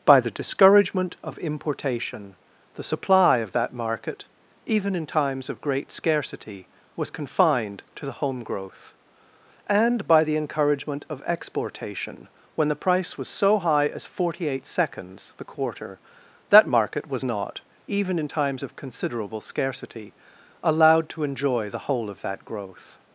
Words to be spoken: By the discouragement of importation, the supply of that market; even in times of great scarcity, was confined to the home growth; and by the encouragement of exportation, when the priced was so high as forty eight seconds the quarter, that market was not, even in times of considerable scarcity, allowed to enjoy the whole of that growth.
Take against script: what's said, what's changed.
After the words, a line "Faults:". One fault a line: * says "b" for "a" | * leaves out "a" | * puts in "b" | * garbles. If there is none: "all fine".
By the discouragement of importation, the supply of that market; even in times of great scarcity, was confined to the home growth; and by the encouragement of exportation, when the price was so high as forty eight seconds the quarter, that market was not, even in times of considerable scarcity, allowed to enjoy the whole of that growth.
Faults:
* says "price" for "priced"